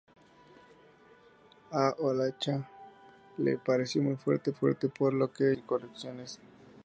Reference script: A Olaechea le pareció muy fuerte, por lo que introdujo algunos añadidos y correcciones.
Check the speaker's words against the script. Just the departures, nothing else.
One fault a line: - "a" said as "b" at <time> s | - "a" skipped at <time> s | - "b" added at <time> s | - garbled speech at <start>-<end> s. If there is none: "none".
- "fuerte" added at 4.5 s
- "introdujo algunos añadidos" skipped at 5.5 s